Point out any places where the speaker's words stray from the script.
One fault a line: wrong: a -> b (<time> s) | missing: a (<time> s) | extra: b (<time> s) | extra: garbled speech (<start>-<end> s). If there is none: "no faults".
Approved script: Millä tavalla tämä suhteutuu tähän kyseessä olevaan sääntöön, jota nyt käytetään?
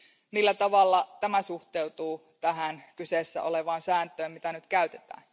no faults